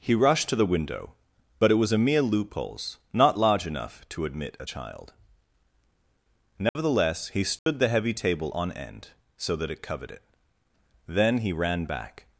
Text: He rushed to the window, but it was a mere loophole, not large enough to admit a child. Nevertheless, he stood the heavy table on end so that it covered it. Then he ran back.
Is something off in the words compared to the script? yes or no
yes